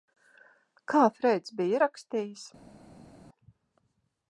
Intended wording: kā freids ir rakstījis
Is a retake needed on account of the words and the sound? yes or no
yes